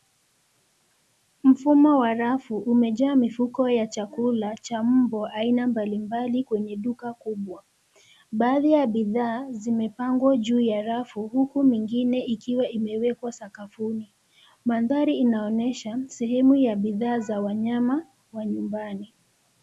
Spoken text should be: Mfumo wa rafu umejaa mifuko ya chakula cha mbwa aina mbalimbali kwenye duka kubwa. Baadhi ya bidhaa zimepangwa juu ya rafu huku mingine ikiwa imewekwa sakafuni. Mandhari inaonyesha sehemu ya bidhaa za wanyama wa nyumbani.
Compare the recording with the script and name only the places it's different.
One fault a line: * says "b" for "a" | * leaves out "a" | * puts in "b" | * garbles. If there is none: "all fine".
all fine